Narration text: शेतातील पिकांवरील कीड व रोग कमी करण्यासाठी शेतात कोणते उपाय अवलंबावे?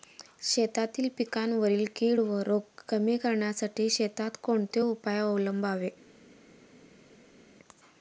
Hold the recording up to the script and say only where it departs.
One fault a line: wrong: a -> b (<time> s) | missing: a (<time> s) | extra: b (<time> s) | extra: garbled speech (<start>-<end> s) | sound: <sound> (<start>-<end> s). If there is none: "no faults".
no faults